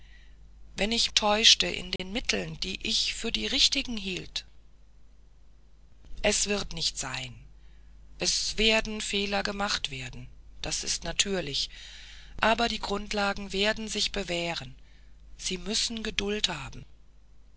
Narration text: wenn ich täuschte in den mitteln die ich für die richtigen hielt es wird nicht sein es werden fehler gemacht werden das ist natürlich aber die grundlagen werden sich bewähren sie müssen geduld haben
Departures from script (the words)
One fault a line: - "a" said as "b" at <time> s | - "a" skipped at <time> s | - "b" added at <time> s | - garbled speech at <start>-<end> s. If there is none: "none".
none